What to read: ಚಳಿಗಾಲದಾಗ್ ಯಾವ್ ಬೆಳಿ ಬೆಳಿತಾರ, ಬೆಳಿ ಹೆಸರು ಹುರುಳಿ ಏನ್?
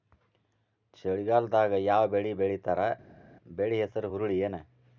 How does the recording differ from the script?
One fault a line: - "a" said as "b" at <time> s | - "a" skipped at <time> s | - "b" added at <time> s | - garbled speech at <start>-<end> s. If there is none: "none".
none